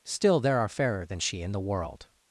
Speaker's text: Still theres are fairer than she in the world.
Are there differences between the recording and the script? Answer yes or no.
yes